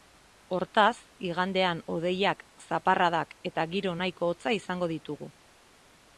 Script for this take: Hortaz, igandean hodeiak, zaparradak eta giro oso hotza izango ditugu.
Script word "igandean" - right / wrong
right